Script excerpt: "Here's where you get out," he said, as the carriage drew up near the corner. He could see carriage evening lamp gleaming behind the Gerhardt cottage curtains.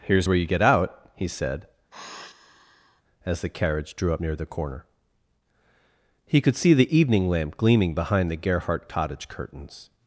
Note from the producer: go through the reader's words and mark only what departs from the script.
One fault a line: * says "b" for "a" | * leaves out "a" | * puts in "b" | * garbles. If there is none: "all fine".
* says "the" for "carriage"